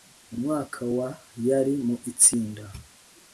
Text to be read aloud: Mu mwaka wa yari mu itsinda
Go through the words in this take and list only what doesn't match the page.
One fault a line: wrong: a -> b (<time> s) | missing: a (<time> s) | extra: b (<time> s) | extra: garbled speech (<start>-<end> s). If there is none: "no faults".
no faults